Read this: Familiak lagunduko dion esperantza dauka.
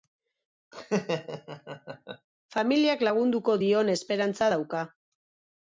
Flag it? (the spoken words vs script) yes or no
no